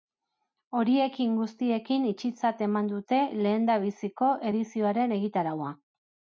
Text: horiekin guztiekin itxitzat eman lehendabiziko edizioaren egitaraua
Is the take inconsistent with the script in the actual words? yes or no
yes